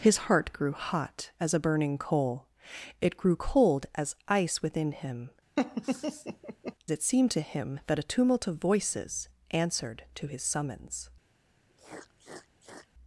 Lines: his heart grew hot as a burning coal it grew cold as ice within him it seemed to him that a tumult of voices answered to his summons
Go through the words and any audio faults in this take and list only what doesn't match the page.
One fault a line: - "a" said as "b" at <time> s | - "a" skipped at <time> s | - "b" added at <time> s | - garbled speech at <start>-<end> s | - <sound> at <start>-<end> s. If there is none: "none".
- laugh at 5.6-6.8 s
- sniff at 11.7-12.9 s